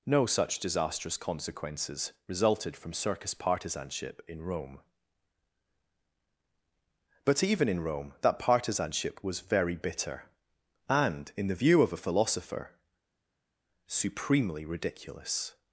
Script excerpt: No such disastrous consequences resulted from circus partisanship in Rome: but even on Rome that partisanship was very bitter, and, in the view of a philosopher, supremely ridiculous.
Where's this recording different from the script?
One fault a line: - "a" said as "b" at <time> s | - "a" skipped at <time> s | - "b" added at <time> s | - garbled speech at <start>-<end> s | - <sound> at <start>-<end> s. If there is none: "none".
- "on" said as "in" at 7.7 s